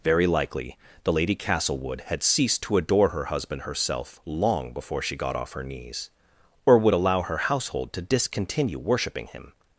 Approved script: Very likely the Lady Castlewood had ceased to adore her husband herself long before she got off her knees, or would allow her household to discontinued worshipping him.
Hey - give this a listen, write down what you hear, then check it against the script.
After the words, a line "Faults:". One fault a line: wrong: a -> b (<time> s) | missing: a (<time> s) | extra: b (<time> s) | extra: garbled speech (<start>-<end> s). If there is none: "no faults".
Very likely the Lady Castlewood had ceased to adore her husband herself long before she got off her knees, or would allow her household to discontinue worshipping him.
Faults:
wrong: discontinued -> discontinue (8.0 s)